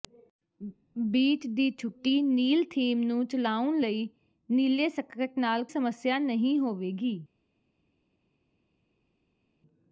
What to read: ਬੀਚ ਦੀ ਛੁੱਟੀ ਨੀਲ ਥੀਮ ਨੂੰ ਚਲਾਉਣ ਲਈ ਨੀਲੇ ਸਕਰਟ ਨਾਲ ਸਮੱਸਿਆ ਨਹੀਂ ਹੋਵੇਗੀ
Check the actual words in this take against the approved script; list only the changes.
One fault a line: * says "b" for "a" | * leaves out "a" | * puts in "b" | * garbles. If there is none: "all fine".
all fine